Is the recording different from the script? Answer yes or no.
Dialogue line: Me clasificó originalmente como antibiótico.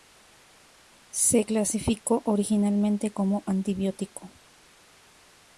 yes